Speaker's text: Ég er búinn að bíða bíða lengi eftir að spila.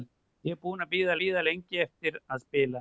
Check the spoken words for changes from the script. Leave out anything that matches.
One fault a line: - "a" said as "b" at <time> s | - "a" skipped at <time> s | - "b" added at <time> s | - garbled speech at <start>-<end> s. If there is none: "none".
none